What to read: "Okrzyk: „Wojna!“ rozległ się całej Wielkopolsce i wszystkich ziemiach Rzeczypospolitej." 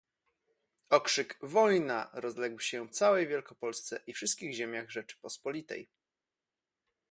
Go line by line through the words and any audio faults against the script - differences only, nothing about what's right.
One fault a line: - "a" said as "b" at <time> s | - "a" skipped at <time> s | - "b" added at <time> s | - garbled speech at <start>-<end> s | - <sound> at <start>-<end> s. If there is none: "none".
none